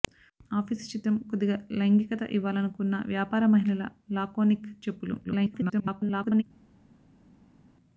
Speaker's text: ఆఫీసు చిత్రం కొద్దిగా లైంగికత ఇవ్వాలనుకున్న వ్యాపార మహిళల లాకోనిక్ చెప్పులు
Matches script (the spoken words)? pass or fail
fail